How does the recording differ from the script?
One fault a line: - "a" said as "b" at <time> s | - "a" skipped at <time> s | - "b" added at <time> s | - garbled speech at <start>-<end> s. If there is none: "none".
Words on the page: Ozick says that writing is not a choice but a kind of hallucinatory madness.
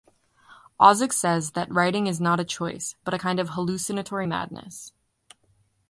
none